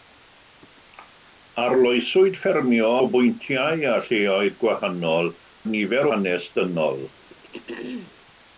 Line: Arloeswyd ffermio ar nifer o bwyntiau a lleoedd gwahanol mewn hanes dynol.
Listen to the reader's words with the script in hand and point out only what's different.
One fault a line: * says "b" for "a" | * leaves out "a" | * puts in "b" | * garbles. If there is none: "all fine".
* leaves out "ar nifer"
* says "nifer" for "mewn"